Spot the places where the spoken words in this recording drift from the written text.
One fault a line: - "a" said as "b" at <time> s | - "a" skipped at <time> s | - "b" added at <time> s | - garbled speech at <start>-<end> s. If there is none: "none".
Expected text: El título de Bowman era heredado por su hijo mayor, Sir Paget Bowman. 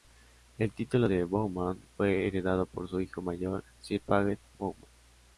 - "era" said as "fue" at 1.9 s